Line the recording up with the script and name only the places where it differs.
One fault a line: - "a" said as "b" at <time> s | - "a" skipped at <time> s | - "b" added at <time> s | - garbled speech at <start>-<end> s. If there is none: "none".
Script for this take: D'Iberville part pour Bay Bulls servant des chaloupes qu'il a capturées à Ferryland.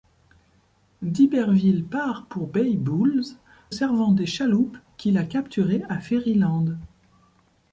none